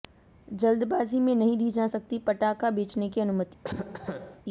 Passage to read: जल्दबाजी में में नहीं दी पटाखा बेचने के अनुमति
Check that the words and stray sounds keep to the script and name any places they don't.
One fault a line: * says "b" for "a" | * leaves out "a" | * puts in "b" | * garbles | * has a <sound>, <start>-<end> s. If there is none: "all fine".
* leaves out "में"
* puts in "जा सकती"
* says "की" for "के"
* has a cough, 3.6-4.4 s